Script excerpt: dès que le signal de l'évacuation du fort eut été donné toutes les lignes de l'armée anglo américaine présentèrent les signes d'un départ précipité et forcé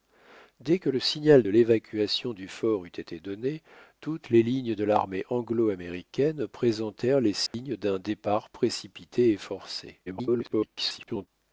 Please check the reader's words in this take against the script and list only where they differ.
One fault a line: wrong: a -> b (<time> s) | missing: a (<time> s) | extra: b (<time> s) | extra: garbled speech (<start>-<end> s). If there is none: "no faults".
extra: garbled speech (10.1-11.3 s)